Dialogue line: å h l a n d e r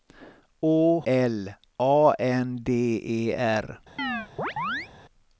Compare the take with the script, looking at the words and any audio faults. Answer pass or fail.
fail